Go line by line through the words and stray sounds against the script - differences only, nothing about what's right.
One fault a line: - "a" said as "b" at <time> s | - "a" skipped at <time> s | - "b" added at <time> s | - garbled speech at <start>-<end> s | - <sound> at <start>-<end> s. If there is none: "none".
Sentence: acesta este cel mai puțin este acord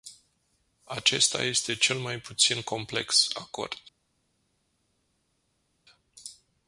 - "este" said as "complex" at 2.6 s